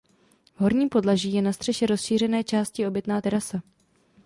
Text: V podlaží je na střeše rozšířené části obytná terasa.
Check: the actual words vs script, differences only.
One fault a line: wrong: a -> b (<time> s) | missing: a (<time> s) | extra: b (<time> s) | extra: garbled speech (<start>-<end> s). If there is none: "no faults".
extra: horním (0.6 s)